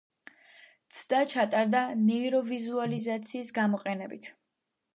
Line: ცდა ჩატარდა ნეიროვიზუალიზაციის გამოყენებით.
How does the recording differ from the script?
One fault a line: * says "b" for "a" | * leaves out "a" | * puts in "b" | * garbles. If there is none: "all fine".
all fine